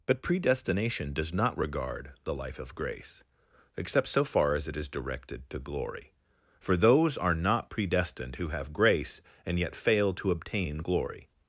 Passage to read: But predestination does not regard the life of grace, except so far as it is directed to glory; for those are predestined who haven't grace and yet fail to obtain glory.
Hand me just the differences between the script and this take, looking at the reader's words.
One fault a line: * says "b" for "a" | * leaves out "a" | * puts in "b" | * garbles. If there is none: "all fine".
* puts in "not"
* says "have" for "haven't"